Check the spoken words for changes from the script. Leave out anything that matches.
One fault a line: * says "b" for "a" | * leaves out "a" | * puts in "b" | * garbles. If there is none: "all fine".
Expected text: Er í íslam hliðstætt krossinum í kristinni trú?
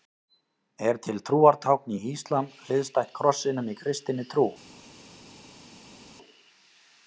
* puts in "til trúartákn"